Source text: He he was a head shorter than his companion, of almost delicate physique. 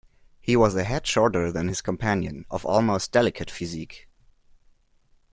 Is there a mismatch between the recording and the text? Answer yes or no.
yes